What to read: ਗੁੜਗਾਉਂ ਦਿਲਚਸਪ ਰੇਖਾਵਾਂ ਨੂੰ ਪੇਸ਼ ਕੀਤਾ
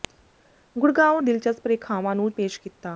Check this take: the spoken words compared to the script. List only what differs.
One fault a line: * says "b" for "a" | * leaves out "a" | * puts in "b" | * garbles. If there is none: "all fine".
all fine